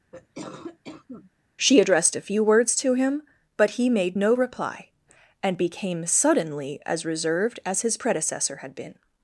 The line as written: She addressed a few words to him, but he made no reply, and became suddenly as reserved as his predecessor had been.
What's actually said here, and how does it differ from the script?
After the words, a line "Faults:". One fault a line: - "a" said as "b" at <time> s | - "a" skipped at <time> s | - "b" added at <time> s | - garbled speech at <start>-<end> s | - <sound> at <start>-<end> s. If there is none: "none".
She addressed a few words to him, but he made no reply, and became suddenly as reserved as his predecessor had been.
Faults:
- cough at 0.1-1.3 s